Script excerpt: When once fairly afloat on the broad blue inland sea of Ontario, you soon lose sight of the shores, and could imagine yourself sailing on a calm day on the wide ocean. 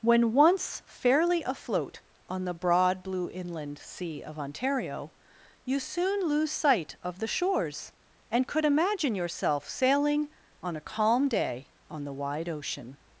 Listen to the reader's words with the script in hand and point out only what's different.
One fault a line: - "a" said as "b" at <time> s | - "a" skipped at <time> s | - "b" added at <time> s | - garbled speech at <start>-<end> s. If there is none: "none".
none